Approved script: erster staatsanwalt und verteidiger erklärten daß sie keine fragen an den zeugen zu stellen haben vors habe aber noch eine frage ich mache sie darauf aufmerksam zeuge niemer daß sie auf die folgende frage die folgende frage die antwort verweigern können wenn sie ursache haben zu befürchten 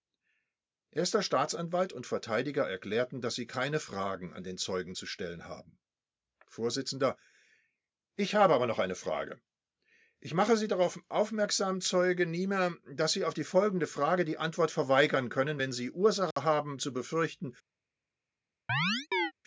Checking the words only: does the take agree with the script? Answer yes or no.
no